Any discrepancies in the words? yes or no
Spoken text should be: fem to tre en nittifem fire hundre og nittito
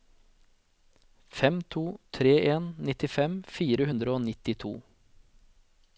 no